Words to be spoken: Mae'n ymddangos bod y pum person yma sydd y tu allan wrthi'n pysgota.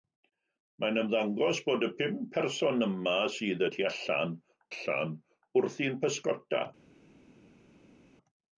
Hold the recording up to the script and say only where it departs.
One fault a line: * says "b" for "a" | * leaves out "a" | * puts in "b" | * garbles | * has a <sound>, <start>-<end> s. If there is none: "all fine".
* puts in "allan"